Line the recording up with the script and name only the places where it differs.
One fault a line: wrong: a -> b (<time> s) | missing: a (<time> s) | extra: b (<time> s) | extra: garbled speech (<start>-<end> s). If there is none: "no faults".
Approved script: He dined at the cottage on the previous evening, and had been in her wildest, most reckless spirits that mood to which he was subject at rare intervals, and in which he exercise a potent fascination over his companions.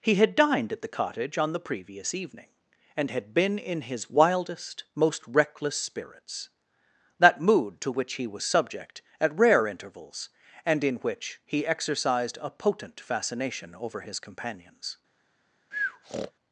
extra: had (0.1 s)
wrong: her -> his (3.8 s)
wrong: exercise -> exercised (11.7 s)